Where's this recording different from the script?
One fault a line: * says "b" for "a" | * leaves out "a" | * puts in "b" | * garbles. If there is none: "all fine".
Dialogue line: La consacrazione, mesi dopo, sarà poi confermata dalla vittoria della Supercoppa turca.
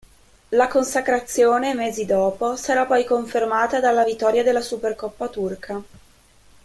all fine